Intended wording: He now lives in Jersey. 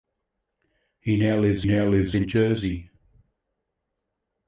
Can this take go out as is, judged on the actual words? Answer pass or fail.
fail